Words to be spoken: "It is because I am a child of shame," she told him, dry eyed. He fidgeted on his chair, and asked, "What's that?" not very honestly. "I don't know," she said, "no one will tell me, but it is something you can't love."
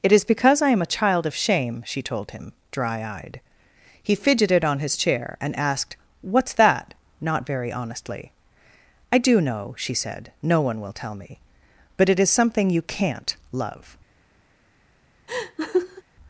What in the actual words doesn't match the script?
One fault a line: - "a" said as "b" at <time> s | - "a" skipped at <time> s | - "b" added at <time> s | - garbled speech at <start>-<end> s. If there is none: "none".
- "don't" said as "do" at 9.2 s